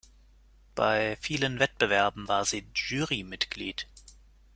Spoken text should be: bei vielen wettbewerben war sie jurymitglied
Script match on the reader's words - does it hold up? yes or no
yes